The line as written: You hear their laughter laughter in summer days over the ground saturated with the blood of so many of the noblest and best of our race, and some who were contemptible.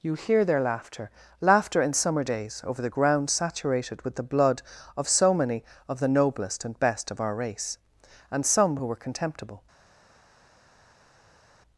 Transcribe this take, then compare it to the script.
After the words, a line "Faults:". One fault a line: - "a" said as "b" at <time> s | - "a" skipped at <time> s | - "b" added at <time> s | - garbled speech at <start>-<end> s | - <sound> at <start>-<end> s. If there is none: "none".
You hear their laughter laughter in summer days over the ground saturated with the blood of so many of the noblest and best of our race, and some who were contemptible.
Faults:
none